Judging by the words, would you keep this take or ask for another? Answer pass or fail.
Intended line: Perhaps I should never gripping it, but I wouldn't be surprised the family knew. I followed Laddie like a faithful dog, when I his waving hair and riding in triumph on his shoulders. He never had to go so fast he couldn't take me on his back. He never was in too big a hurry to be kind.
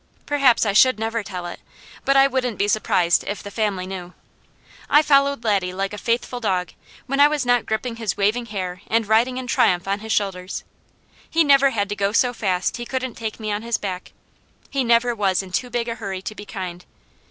fail